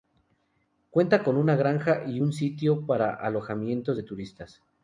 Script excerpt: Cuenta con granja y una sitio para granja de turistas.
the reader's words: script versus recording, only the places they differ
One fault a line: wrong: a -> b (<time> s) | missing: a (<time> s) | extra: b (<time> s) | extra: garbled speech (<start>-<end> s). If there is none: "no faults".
extra: una (1.4 s)
wrong: una -> un (2.2 s)
wrong: granja -> alojamientos (3.1 s)